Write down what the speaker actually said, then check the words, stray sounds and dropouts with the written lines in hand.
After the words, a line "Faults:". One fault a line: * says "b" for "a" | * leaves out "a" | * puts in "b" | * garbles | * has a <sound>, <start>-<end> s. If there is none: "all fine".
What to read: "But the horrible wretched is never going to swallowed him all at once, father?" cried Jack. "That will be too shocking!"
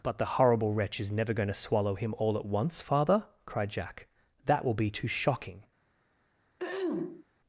"But the horrible wretch is never going to swallow him all at once, father?" cried Jack. "That will be too shocking!"
Faults:
* says "wretch" for "wretched"
* says "swallow" for "swallowed"
* has a throat clearing, 6.6-7.2 s